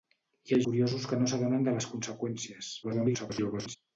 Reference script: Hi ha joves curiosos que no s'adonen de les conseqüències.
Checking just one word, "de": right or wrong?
right